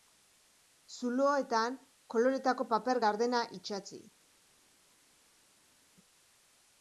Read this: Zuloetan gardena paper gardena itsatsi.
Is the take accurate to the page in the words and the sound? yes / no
no